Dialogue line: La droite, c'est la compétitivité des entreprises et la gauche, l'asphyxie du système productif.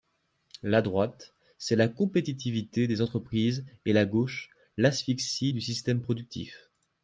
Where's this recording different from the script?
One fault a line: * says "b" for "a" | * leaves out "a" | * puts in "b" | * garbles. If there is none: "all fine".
all fine